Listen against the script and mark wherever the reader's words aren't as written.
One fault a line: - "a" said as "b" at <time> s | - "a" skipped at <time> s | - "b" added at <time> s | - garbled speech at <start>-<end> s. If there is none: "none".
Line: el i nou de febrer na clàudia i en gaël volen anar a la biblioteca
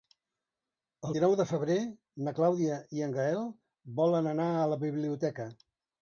none